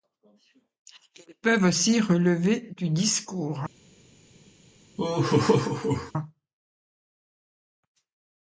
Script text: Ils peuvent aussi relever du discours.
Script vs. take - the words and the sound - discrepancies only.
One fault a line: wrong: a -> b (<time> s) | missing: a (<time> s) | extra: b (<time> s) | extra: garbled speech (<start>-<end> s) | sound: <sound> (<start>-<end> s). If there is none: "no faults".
sound: laugh (5.0-6.1 s)